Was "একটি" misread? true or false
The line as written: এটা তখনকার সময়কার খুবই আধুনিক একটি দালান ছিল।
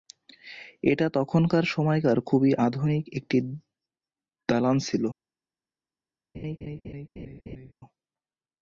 false